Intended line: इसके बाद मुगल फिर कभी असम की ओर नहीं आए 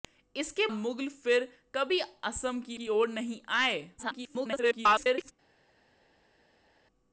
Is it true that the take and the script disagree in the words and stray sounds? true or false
true